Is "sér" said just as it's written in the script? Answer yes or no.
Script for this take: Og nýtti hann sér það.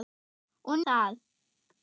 no